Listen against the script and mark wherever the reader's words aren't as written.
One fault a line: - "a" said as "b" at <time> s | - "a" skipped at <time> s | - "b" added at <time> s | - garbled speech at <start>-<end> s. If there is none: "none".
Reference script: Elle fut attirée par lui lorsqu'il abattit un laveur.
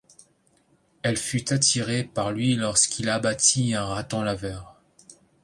- "raton" added at 3.9 s